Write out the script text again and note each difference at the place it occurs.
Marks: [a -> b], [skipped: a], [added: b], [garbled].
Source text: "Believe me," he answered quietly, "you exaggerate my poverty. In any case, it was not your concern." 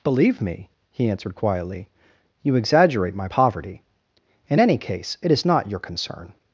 "Believe me," he answered quietly, "you exaggerate my poverty. In any case, it [was -> is] not your concern."